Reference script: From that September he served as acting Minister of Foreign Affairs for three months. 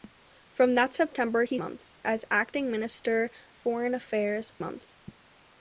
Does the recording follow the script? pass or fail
fail